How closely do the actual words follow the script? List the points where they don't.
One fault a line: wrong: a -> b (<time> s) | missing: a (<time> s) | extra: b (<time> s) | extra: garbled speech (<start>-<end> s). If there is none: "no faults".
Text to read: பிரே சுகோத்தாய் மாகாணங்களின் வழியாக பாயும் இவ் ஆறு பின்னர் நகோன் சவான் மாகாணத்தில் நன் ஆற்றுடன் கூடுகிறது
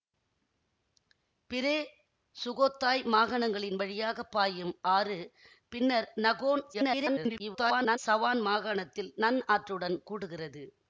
missing: இவ் (4.7 s)
extra: garbled speech (6.7-8.0 s)